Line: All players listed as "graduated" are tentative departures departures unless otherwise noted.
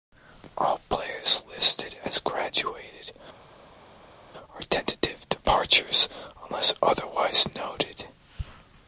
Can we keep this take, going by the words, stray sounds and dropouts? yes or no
no